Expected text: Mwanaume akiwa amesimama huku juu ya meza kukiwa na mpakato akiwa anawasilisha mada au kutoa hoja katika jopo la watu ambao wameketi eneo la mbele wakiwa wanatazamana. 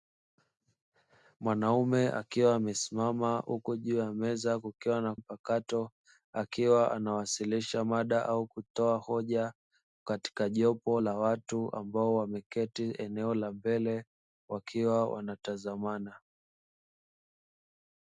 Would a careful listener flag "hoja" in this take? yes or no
no